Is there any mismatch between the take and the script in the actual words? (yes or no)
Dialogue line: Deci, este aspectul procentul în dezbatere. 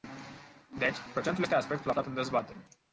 yes